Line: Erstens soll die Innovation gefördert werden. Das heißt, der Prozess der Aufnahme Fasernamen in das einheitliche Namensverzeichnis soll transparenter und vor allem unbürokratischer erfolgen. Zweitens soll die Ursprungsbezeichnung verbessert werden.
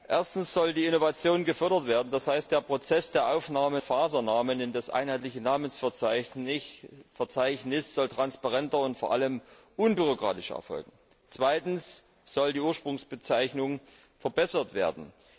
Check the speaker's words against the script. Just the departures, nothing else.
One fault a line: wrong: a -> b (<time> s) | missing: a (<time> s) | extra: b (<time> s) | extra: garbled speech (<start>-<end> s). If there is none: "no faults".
no faults